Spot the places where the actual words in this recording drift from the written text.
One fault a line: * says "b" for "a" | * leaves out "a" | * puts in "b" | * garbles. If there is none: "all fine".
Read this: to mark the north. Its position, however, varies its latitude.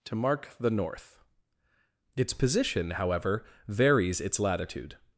all fine